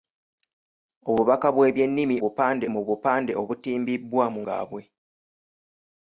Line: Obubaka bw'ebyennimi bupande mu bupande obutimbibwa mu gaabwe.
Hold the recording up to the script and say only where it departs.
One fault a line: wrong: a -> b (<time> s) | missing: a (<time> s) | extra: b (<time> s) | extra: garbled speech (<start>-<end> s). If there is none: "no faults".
no faults